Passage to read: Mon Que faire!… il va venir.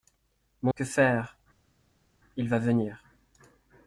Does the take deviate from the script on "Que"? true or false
false